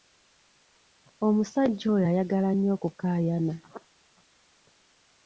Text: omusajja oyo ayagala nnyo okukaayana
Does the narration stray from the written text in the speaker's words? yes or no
no